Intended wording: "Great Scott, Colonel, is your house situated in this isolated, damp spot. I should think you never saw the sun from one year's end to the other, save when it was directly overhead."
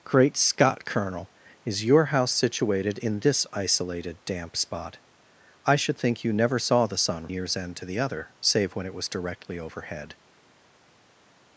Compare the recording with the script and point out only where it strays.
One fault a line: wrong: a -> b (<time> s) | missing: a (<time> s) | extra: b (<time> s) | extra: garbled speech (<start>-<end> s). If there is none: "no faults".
missing: from one (7.3 s)